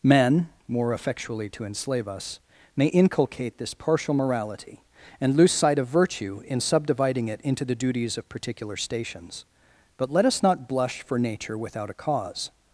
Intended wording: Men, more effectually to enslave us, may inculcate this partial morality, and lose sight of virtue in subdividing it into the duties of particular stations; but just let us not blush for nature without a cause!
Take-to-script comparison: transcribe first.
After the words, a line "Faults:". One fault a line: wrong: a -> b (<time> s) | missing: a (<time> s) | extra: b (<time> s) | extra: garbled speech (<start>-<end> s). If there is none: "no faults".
Men, more effectually to enslave us, may inculcate this partial morality, and lose sight of virtue in subdividing it into the duties of particular stations; but let us not blush for nature without a cause!
Faults:
missing: just (10.1 s)